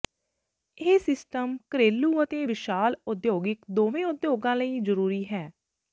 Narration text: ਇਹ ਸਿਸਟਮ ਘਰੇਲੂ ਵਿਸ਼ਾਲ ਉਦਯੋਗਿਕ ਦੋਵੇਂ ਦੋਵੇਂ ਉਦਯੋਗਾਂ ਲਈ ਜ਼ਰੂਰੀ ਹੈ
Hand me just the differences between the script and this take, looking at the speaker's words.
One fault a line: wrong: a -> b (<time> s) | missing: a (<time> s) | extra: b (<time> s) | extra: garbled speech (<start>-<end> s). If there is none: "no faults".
extra: ਅਤੇ (2.2 s)
missing: ਦੋਵੇਂ (4.0 s)